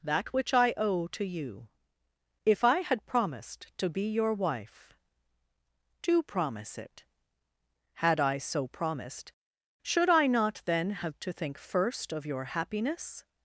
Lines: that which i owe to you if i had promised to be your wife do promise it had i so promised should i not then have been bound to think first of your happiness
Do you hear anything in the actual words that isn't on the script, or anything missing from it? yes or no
yes